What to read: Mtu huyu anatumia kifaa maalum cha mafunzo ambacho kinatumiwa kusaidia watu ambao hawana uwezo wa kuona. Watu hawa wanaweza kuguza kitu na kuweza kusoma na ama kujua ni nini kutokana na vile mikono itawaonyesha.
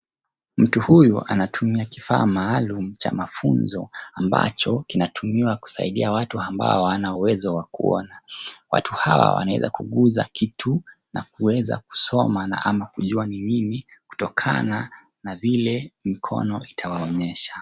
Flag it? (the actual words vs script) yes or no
no